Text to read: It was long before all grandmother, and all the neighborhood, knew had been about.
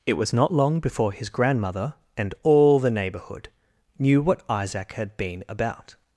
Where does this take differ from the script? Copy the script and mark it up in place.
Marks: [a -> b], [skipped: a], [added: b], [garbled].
It was [added: not] long before [all -> his] grandmother, and all the neighborhood, knew [added: what Isaac] had been about.